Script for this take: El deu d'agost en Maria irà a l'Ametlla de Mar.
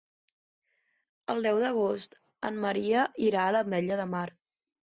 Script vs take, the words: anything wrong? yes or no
no